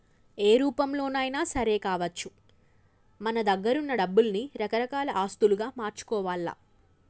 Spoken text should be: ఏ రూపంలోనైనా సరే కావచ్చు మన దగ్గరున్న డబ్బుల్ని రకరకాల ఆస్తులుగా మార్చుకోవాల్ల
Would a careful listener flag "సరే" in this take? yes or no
no